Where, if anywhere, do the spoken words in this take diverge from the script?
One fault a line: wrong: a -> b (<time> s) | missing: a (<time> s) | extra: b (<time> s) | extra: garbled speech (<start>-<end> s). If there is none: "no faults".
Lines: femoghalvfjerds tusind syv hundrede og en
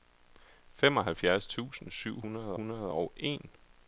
extra: hundrede (2.5 s)